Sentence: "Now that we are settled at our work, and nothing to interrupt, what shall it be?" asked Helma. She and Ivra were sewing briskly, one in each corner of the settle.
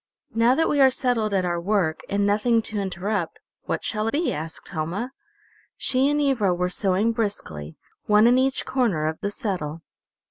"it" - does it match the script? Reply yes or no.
no